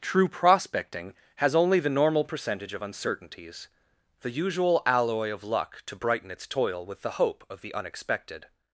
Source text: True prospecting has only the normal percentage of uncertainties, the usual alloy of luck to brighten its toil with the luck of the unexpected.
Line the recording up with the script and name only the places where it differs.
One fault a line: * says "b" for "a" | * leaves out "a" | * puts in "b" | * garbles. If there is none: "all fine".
* says "hope" for "luck"